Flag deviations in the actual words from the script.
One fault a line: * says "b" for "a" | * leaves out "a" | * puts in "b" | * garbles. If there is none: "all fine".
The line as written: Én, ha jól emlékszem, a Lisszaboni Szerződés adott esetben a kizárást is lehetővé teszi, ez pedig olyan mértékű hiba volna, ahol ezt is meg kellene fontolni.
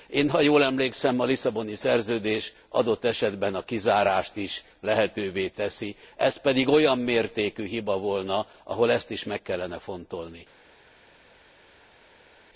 all fine